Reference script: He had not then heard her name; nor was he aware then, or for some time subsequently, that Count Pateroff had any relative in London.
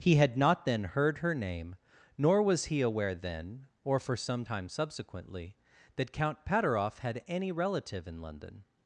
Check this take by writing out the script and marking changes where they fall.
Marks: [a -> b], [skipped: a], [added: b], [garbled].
He had not then heard her name; nor was he aware then, or for some time subsequently, that Count Pateroff had any relative in London.